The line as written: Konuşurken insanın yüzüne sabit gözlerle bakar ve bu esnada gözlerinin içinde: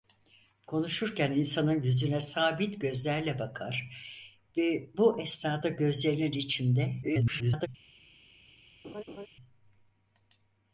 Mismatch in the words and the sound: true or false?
true